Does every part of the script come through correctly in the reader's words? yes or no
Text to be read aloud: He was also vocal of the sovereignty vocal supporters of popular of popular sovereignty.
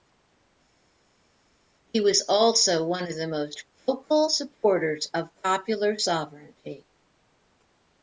no